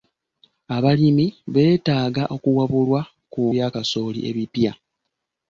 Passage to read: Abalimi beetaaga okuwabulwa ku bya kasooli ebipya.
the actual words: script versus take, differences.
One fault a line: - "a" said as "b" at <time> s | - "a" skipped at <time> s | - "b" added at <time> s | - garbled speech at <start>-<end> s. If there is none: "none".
none